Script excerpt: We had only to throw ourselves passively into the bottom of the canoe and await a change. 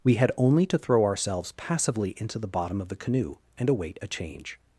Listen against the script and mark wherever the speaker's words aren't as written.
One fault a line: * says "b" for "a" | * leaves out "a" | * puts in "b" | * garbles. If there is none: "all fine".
all fine